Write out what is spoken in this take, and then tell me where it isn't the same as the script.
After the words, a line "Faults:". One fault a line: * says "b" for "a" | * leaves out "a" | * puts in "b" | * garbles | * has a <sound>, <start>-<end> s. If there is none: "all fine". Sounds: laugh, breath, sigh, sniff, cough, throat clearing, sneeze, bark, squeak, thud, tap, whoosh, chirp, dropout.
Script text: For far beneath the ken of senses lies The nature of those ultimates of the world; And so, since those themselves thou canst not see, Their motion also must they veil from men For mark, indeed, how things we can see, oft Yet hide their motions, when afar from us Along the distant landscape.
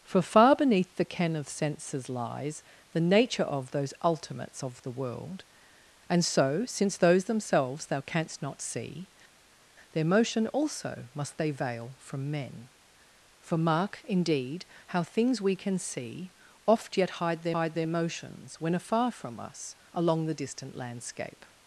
For far beneath the ken of senses lies The nature of those ultimates of the world; And so, since those themselves thou canst not see, Their motion also must they veil from men For mark, indeed, how things we can see, oft Yet hide their hide their motions, when afar from us Along the distant landscape.
Faults:
* puts in "hide their"